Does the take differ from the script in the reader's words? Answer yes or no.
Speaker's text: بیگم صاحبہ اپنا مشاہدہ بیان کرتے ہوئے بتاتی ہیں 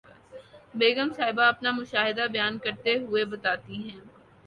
no